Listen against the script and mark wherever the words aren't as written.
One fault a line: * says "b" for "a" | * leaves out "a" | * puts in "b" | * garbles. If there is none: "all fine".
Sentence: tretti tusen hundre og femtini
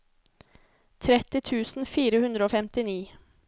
* puts in "fire"